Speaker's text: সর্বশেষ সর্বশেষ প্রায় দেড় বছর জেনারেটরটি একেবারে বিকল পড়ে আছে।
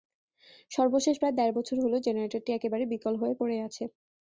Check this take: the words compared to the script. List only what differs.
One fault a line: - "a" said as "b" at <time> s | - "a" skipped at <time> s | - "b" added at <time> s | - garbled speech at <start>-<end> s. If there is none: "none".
- "সর্বশেষ" skipped at 1.1 s
- "হলো" added at 1.8 s
- "হয়ে" added at 3.2 s